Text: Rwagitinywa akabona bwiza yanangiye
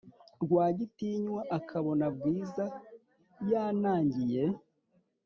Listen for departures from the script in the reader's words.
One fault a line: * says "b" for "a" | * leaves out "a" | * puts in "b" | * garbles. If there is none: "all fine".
all fine